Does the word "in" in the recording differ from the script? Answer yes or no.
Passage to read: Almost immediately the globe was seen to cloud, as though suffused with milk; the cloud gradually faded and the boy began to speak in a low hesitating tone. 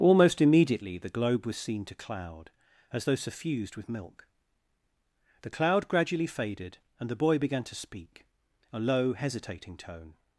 yes